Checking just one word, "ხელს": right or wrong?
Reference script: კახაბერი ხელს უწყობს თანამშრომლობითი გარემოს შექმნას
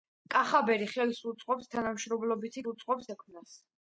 right